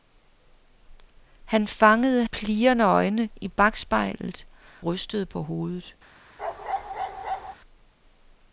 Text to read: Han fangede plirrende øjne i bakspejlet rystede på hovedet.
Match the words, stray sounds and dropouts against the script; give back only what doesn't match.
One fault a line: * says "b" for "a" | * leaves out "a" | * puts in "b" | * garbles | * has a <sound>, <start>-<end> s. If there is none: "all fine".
* has a bark, 6.4-7.6 s